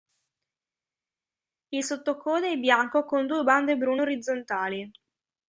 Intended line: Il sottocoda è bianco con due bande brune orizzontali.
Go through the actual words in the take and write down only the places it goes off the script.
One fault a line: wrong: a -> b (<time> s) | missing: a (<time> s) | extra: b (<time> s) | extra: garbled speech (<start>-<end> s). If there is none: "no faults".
no faults